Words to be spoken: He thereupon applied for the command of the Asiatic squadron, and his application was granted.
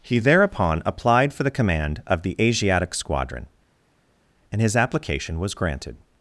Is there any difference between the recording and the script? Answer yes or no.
no